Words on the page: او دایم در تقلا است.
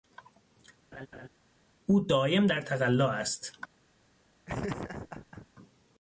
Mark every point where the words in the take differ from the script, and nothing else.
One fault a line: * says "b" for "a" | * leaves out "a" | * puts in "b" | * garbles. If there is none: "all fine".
all fine